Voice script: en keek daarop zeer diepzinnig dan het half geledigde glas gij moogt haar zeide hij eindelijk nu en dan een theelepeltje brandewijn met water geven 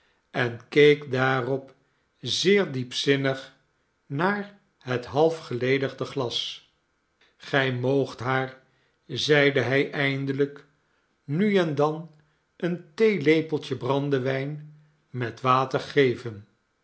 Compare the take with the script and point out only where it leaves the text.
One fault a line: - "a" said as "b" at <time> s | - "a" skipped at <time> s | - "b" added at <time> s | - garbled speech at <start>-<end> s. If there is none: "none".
- "dan" said as "naar" at 4.0 s